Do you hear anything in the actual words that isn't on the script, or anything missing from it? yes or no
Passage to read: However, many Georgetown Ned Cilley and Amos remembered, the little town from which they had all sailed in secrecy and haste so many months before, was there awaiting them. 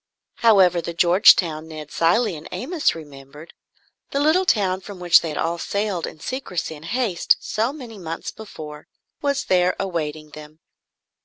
yes